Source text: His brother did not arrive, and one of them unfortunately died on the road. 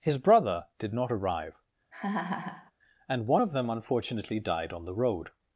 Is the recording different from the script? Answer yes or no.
no